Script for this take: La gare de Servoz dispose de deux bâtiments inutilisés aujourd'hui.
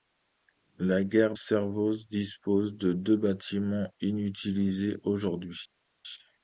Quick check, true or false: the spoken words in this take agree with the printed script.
false